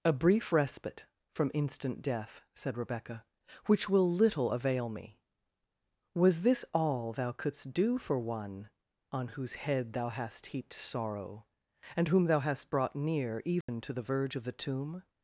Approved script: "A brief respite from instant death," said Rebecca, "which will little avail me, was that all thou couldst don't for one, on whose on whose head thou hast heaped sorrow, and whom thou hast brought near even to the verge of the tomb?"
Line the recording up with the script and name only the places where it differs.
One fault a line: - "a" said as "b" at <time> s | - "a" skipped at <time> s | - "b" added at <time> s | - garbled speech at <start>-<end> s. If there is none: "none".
- "that" said as "this" at 6.4 s
- "don't" said as "do" at 7.7 s
- "on whose" skipped at 9.6 s